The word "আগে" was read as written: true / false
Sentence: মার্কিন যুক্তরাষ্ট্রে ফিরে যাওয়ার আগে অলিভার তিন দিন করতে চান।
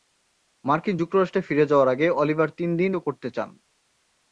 true